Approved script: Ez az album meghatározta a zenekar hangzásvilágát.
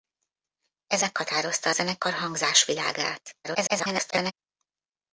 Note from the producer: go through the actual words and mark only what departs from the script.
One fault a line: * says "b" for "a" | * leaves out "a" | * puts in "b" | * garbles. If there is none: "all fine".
* leaves out "az album"
* garbles